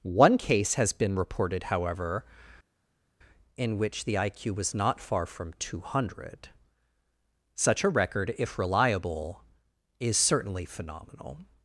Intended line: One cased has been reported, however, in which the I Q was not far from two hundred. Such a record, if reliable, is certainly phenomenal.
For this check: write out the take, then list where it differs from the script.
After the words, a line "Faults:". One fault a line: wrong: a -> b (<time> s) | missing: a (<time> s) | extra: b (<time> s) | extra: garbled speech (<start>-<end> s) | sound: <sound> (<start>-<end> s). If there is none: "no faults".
One case has been reported, however, in which the I Q was not far from two hundred. Such a record, if reliable, is certainly phenomenal.
Faults:
wrong: cased -> case (0.4 s)